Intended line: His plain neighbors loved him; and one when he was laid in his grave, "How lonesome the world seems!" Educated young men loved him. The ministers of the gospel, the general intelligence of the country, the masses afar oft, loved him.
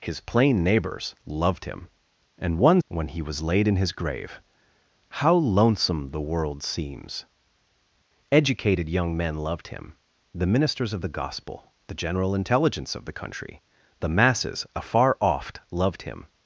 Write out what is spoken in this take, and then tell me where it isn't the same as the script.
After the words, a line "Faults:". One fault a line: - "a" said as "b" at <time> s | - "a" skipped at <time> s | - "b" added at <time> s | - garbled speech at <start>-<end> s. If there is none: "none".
His plain neighbors loved him; and one when he was laid in his grave, "How lonesome the world seems!" Educated young men loved him. The ministers of the gospel, the general intelligence of the country, the masses afar oft, loved him.
Faults:
none